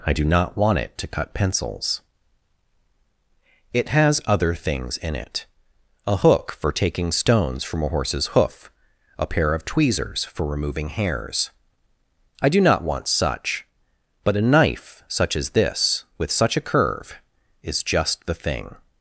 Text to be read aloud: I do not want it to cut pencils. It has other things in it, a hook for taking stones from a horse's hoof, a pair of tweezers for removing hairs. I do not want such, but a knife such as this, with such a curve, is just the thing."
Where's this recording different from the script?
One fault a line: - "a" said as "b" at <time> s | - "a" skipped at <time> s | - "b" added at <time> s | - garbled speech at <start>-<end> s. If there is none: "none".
none